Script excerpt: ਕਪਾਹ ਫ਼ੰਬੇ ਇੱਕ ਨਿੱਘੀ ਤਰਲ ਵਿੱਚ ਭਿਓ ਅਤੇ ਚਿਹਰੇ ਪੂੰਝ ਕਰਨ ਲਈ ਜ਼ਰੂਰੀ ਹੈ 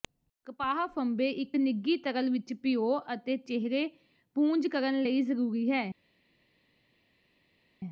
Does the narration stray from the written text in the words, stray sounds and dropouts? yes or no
no